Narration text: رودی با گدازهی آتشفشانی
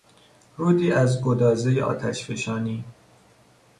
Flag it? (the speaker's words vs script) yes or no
yes